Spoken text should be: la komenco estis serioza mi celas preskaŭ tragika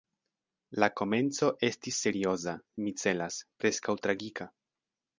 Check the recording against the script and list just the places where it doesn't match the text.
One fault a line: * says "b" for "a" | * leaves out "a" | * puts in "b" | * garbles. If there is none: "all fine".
all fine